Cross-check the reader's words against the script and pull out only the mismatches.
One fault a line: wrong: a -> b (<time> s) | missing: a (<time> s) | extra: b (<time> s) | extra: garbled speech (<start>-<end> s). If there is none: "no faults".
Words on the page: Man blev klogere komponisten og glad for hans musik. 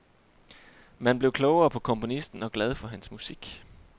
extra: på (1.7 s)